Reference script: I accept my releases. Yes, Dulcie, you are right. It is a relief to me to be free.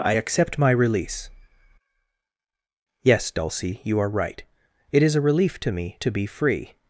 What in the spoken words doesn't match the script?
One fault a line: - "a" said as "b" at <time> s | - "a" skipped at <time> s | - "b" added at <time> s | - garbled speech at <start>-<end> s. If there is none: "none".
- "releases" said as "release" at 0.7 s